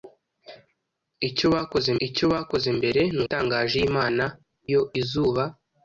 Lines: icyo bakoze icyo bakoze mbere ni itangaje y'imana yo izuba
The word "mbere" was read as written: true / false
true